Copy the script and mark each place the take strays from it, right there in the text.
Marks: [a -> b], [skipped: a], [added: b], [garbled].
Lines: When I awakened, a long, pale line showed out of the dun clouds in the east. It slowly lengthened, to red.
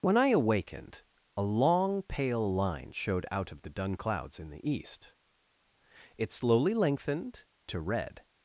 When I awakened, a long, pale line showed out of the dun clouds in the east. It slowly lengthened, to red.